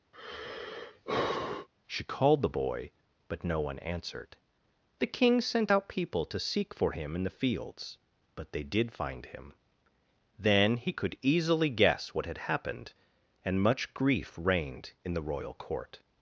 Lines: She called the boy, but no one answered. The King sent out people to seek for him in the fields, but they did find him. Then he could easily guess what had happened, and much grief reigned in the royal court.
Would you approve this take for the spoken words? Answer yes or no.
yes